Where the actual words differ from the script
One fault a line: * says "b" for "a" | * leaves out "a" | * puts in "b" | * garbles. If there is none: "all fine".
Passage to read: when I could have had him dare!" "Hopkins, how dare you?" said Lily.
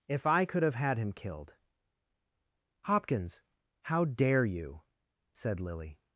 * says "if" for "when"
* says "killed" for "dare"